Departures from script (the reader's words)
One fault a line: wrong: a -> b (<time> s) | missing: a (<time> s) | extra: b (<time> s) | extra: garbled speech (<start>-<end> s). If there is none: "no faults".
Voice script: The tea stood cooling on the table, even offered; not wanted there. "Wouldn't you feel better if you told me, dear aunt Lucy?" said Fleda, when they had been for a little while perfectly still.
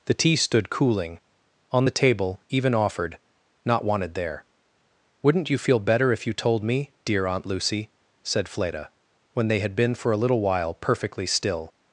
no faults